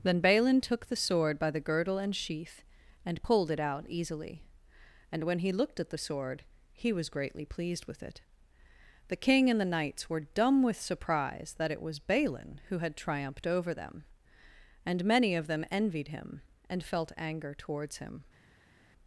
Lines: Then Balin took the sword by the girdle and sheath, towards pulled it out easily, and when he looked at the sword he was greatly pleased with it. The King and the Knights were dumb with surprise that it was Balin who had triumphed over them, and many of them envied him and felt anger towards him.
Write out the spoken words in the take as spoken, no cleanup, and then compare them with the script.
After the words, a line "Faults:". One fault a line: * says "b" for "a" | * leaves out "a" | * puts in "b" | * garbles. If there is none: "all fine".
Then Balin took the sword by the girdle and sheath, and pulled it out easily, and when he looked at the sword he was greatly pleased with it. The King and the Knights were dumb with surprise that it was Balin who had triumphed over them, and many of them envied him and felt anger towards him.
Faults:
* says "and" for "towards"